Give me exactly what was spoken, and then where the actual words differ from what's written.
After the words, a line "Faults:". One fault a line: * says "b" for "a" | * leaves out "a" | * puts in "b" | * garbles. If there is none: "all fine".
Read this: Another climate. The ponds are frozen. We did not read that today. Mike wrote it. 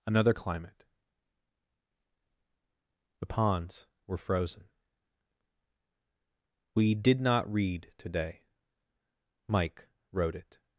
Another climate. The ponds were frozen. We did not read today. Mike wrote it.
Faults:
* says "were" for "are"
* leaves out "that"